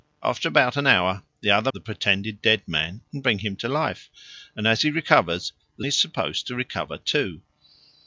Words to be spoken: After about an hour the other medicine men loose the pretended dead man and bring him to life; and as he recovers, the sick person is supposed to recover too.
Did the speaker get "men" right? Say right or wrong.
wrong